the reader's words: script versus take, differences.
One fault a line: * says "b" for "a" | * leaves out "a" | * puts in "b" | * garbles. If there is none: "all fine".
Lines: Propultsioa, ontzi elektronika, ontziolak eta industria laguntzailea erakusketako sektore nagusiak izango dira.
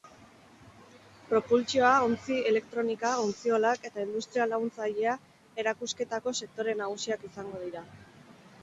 all fine